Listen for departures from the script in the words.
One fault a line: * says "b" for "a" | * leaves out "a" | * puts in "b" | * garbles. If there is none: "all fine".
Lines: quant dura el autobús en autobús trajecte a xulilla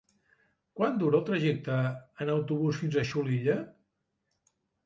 * says "trajecte" for "autobús"
* says "fins" for "trajecte"